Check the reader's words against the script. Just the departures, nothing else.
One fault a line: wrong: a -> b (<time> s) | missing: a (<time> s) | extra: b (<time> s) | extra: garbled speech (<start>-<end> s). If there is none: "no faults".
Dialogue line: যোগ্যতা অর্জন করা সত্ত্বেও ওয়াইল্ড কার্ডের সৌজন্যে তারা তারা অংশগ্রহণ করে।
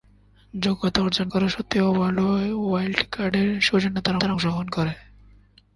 no faults